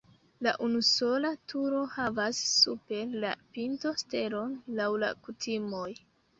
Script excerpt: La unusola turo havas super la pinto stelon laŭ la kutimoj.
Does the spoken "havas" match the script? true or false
true